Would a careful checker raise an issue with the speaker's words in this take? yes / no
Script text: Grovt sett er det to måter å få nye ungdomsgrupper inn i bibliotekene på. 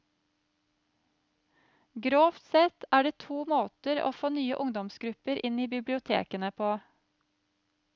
no